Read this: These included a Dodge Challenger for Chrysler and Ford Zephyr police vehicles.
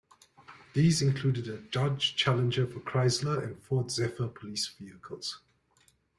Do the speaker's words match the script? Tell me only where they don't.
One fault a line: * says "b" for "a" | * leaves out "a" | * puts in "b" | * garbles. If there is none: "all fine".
all fine